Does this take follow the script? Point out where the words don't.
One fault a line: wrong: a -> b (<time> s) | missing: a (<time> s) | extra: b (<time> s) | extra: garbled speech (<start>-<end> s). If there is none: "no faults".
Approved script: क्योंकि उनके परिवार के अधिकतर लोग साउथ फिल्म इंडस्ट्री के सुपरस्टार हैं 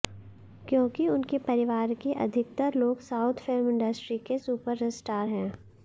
no faults